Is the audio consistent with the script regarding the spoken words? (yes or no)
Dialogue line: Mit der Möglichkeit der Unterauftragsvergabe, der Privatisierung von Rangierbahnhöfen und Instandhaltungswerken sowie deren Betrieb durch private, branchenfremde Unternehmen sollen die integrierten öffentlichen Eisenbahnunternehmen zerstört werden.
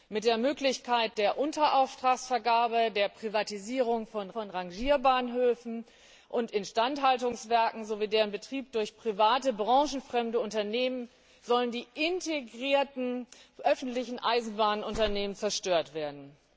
no